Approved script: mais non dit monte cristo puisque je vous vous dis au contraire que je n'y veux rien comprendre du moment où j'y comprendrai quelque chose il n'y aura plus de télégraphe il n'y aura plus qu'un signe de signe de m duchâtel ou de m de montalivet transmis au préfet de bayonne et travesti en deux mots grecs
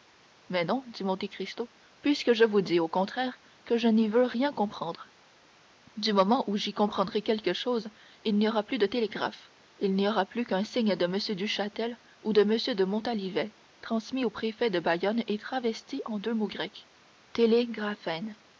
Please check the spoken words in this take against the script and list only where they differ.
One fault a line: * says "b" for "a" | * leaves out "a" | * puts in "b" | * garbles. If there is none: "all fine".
* leaves out "vous"
* leaves out "signe de"